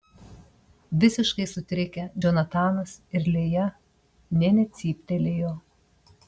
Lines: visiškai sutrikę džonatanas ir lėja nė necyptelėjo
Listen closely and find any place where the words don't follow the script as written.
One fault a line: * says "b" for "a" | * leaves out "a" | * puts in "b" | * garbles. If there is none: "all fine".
all fine